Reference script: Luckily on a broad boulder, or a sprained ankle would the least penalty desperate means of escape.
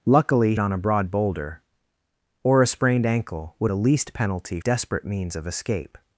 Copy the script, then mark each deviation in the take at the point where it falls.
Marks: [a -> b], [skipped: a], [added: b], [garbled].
Luckily on a broad boulder, or a sprained ankle would the least penalty desperate means of escape.